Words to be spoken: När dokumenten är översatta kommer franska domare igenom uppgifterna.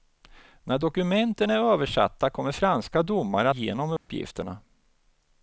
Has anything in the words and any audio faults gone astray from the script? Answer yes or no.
yes